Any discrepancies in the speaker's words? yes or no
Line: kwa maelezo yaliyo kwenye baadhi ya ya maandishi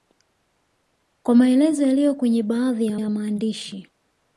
no